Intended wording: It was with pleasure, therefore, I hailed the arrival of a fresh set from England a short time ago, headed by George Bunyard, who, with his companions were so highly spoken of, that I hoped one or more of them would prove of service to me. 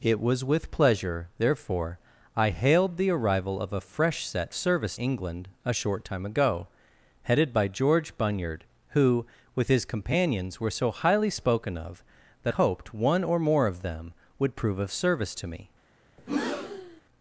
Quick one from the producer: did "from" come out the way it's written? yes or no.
no